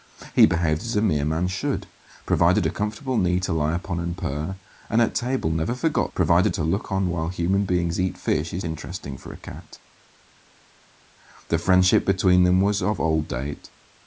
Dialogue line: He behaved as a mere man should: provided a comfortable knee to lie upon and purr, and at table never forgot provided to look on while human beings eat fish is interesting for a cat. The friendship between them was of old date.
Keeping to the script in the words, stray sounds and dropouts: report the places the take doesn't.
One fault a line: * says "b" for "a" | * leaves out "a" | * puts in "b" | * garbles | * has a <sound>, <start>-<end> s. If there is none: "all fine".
all fine